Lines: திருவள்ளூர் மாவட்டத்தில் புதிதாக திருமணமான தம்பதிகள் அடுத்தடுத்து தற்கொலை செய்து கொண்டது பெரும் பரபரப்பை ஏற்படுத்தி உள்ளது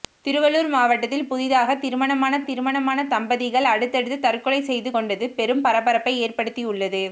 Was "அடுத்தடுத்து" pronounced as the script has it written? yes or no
yes